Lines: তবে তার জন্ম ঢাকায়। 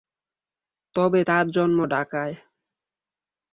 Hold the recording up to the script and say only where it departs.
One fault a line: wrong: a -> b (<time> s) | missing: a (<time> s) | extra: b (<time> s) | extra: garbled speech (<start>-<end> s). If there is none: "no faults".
no faults